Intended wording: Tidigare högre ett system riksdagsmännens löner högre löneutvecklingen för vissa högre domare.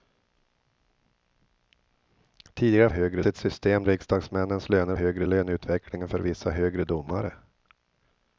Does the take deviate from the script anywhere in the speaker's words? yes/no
no